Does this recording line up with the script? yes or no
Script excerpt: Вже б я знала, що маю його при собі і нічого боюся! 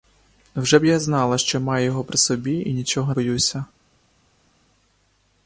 yes